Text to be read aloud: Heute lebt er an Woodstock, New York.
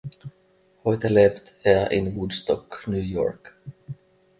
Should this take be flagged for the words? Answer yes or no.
yes